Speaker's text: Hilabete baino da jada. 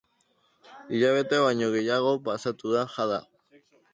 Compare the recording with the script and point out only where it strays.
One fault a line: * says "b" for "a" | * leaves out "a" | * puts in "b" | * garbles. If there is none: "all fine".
* puts in "gehiago pasatu"